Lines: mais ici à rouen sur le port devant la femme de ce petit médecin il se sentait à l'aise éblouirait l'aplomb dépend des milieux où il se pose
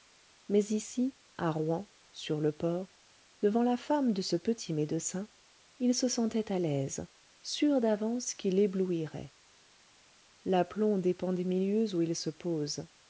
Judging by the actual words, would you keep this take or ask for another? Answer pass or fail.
fail